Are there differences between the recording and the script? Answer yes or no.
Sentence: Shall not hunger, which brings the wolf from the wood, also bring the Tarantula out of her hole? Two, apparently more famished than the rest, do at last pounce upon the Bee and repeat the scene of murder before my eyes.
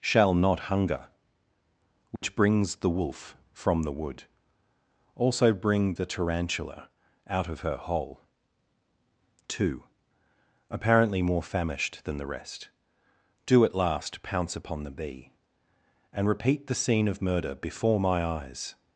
no